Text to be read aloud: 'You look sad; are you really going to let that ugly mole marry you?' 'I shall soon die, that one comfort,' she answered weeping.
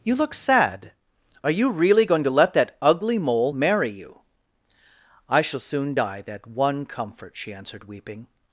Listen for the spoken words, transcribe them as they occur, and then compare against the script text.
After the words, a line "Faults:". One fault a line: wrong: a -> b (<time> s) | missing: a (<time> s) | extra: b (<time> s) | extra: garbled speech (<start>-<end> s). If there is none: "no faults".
'You look sad; are you really going to let that ugly mole marry you?' 'I shall soon die, that one comfort,' she answered weeping.
Faults:
no faults